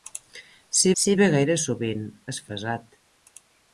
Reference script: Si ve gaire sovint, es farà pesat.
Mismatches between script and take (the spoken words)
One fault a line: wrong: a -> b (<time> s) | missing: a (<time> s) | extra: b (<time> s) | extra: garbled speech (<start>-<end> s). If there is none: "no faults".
extra: si (1.0 s)
missing: farà (2.4 s)